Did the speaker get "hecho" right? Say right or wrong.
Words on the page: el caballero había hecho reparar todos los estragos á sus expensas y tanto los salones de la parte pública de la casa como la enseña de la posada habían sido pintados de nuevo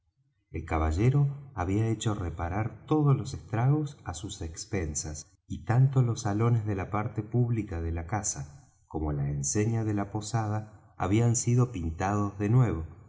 right